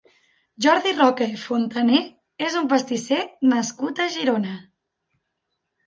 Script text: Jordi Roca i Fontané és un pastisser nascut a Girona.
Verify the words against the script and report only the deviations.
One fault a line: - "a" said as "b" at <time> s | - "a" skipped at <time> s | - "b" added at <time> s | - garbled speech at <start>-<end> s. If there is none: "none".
none